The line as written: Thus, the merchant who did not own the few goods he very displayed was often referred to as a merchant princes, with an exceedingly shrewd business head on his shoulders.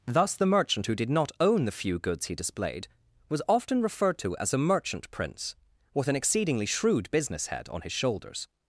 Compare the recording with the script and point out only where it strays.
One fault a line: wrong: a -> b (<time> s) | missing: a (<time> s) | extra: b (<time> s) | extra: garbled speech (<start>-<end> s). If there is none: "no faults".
missing: very (2.4 s)
wrong: princes -> prince (5.1 s)